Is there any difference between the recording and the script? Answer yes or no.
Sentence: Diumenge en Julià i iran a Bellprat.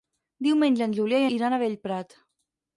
no